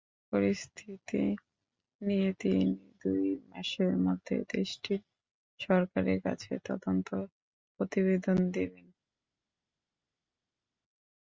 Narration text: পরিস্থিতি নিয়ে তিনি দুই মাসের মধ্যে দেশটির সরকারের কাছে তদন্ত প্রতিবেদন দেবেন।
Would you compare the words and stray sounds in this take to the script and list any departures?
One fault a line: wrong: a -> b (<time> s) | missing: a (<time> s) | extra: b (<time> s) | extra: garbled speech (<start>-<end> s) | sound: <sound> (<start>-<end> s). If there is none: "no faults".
no faults